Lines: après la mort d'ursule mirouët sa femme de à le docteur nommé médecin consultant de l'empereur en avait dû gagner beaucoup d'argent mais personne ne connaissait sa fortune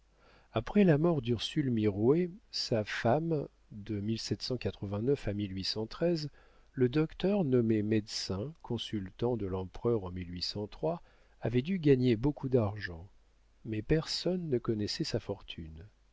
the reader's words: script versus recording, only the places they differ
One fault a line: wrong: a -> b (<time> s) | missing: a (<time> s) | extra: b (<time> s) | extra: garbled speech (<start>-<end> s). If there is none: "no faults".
no faults